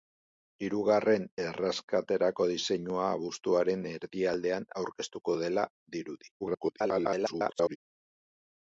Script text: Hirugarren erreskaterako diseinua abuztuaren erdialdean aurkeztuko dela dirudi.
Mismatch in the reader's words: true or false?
true